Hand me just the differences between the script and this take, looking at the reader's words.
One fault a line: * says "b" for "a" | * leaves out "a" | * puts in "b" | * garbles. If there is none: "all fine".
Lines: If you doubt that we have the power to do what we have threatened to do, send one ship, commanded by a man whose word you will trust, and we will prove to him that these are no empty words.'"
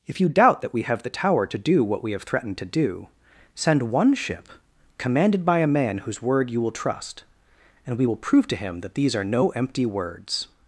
* says "tower" for "power"